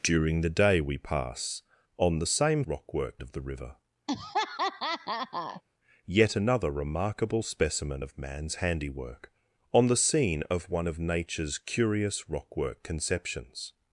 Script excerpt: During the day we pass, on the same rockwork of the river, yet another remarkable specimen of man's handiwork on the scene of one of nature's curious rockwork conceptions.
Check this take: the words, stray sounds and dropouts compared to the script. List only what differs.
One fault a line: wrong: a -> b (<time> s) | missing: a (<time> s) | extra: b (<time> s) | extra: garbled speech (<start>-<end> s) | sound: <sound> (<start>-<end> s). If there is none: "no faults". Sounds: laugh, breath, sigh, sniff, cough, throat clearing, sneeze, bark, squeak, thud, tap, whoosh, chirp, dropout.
sound: laugh (4.1-5.6 s)